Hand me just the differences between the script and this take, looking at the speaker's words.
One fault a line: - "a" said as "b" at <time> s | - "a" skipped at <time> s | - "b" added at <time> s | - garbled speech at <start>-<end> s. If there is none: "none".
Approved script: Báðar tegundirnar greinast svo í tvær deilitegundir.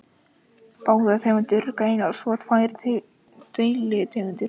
none